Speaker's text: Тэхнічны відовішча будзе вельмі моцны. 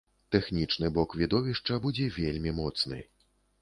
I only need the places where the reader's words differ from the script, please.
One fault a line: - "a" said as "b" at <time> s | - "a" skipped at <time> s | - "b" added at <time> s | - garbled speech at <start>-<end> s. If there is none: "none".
- "бок" added at 0.9 s